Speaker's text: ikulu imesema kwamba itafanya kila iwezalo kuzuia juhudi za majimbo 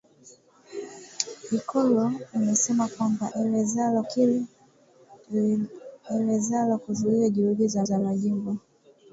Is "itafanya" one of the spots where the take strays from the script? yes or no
yes